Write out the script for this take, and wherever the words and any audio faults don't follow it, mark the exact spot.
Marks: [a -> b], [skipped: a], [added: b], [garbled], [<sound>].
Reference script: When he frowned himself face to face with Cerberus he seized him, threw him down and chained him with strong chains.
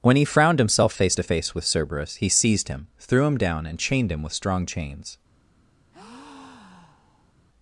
When he frowned himself face to face with Cerberus he seized him, threw him down and chained him with strong chains. [breath]